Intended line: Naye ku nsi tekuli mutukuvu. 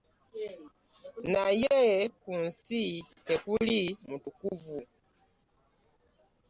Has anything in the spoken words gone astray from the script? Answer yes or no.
no